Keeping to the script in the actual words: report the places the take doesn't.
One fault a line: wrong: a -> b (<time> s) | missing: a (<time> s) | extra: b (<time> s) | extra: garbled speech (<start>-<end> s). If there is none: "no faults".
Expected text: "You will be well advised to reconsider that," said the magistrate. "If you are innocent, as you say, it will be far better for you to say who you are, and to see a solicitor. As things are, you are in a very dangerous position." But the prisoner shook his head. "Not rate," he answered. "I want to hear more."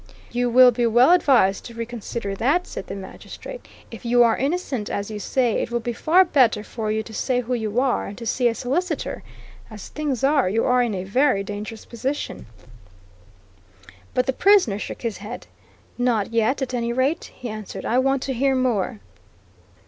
extra: yet at any (16.3 s)